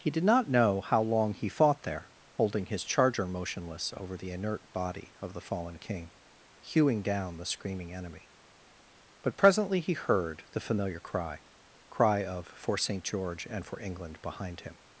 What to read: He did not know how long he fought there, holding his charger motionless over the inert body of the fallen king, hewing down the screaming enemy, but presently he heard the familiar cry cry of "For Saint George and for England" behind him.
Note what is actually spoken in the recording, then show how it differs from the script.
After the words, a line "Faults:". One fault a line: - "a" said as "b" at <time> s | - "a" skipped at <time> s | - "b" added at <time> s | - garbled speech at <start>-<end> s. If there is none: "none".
He did not know how long he fought there, holding his charger motionless over the inert body of the fallen king, hewing down the screaming enemy, but presently he heard the familiar cry cry of "For Saint George and for England" behind him.
Faults:
none